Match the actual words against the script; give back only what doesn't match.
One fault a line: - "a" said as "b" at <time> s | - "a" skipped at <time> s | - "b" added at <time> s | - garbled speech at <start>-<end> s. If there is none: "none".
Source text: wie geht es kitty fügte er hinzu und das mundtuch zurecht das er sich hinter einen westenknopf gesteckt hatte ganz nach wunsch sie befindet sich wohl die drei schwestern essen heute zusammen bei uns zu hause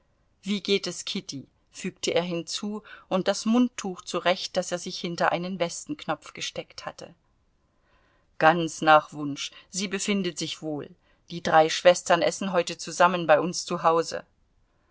none